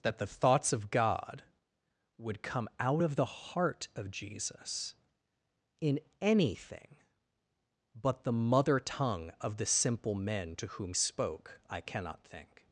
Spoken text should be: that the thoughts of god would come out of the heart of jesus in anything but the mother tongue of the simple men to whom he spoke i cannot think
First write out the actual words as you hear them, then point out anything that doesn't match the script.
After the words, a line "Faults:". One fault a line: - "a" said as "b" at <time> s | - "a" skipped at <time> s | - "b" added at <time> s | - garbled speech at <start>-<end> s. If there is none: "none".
that the thoughts of god would come out of the heart of jesus in anything but the mother tongue of the simple men to whom spoke i cannot think
Faults:
- "he" skipped at 10.9 s